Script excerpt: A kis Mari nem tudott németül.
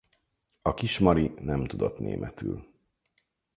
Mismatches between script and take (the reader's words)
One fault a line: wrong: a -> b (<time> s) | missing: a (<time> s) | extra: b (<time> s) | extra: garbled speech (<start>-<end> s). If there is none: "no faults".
no faults